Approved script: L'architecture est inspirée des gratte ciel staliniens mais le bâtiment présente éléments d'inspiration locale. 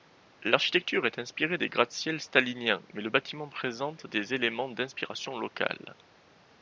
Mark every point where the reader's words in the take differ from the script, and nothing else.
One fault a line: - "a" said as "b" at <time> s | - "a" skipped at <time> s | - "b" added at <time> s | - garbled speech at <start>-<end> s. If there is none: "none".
- "des" added at 4.1 s